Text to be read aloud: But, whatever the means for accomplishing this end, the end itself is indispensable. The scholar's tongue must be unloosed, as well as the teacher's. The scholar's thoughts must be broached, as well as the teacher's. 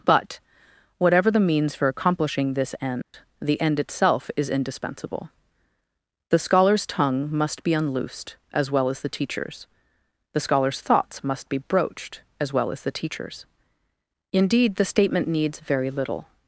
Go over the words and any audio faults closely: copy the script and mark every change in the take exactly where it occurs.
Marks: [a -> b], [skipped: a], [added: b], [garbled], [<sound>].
But, whatever the means for accomplishing this end, [dropout] the end itself is indispensable. The scholar's tongue must be unloosed, as well as the teacher's. The scholar's thoughts must be broached, as well as the teacher's. [added: Indeed the statement needs very little]